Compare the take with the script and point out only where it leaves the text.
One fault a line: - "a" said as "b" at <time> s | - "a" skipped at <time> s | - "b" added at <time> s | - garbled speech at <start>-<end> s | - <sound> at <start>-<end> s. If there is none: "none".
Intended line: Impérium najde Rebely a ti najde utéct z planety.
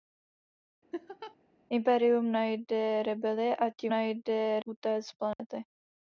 - laugh at 0.9-1.4 s
- dropout at 5.3-5.4 s